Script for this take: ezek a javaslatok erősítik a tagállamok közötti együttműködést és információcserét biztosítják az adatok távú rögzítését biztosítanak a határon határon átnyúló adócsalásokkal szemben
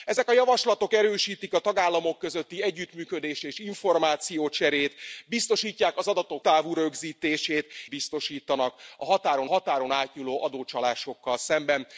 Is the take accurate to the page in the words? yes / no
yes